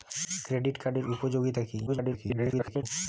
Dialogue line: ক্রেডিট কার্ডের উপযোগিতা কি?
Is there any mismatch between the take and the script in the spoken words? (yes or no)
yes